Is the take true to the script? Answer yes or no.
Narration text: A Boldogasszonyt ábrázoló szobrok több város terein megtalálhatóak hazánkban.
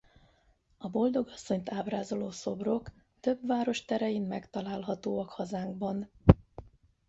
yes